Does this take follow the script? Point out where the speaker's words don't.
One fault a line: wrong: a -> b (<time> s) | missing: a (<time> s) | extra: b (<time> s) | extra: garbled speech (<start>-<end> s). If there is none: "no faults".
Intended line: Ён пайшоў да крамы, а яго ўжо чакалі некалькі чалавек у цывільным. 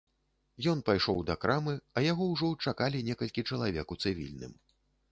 no faults